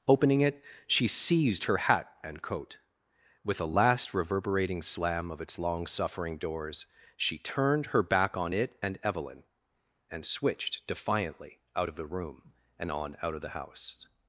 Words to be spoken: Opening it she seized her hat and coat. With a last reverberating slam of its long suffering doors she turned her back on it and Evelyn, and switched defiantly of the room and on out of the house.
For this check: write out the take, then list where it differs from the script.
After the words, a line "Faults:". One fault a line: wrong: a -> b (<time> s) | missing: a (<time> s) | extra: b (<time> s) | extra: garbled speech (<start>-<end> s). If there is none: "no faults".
Opening it she seized her hat and coat. With a last reverberating slam of its long suffering doors she turned her back on it and Evelyn, and switched defiantly out of the room and on out of the house.
Faults:
extra: out (11.7 s)